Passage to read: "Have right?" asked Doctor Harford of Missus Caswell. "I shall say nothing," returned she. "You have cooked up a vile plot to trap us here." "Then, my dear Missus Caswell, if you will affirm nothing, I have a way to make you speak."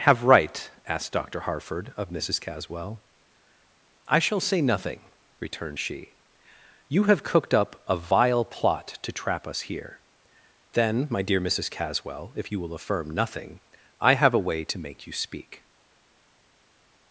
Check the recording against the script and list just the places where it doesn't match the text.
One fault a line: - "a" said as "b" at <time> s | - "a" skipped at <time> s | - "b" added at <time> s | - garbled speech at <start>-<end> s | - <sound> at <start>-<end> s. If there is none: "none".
none